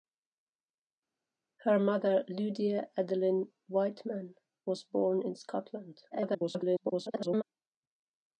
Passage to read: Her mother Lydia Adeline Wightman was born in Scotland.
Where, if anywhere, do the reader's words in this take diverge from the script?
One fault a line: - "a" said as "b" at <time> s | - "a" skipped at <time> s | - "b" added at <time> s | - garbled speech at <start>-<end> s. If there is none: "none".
- garbled speech at 6.1-7.4 s